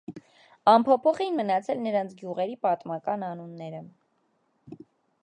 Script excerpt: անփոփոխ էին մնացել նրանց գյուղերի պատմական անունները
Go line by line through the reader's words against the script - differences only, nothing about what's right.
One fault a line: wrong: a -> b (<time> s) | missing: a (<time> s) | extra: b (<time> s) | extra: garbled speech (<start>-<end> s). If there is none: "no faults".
no faults